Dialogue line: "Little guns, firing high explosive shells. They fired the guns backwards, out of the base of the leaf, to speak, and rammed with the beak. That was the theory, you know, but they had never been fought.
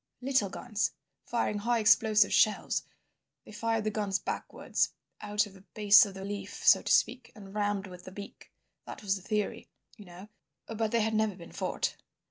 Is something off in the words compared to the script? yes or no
yes